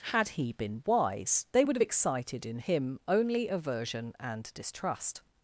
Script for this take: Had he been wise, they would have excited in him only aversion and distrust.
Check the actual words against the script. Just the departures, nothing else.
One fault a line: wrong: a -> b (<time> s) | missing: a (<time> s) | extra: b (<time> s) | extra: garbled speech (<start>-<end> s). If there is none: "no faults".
no faults